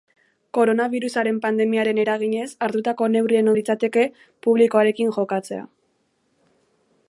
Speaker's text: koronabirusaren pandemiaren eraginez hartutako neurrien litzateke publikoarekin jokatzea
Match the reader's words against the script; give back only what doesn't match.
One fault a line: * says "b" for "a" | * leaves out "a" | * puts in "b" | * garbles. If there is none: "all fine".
all fine